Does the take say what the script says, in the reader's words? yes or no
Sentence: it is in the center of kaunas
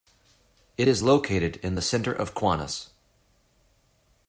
no